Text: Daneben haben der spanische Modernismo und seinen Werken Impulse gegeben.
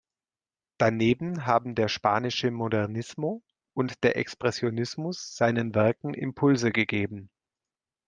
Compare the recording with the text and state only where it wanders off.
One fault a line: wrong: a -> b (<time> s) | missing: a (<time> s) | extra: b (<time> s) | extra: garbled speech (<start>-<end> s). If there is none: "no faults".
extra: der Expressionismus (4.0 s)